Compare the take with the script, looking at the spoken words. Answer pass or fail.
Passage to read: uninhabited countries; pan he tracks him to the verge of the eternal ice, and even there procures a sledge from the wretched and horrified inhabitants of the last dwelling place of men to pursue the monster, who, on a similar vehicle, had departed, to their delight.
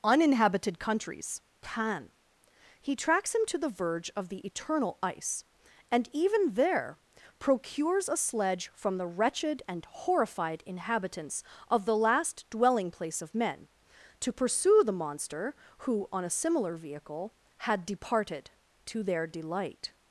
pass